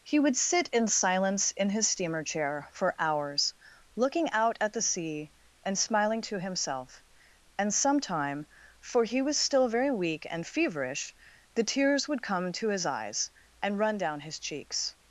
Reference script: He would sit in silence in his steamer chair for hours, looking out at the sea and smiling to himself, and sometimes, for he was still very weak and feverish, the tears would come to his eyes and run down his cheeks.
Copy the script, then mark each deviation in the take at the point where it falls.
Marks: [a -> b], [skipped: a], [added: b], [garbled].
He would sit in silence in his steamer chair for hours, looking out at the sea and smiling to himself, and [sometimes, -> sometime] for he was still very weak and feverish, the tears would come to his eyes and run down his cheeks.